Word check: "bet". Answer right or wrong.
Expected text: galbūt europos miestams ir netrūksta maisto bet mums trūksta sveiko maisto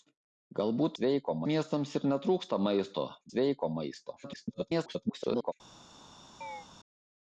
wrong